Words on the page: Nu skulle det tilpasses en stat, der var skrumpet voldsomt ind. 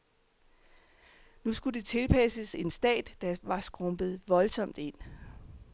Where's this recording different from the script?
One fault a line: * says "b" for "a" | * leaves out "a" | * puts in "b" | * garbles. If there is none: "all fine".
all fine